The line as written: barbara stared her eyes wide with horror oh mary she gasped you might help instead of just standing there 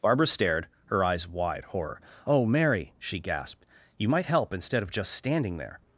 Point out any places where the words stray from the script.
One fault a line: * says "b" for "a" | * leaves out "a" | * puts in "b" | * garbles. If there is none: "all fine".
* leaves out "with"